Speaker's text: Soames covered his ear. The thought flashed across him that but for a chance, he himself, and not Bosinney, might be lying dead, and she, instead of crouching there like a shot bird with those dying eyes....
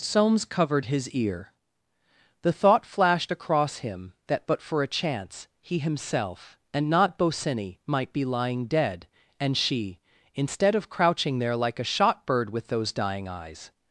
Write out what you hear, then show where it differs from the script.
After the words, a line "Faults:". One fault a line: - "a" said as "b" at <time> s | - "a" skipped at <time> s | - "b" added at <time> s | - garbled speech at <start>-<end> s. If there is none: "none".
Soames covered his ear. The thought flashed across him that but for a chance, he himself, and not Bosinney, might be lying dead, and she, instead of crouching there like a shot bird with those dying eyes....
Faults:
none